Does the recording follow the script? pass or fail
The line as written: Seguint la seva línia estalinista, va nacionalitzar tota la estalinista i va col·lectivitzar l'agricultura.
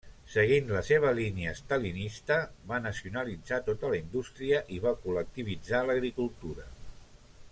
fail